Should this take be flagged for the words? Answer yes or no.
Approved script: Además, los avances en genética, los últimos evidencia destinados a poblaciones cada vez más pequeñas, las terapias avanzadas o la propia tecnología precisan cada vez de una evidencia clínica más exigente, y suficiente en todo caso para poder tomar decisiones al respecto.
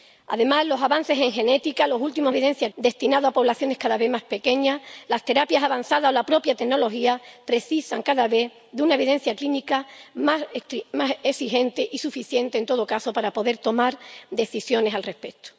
no